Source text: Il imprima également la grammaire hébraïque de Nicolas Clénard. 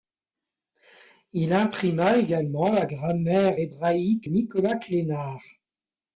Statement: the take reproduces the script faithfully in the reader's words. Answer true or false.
false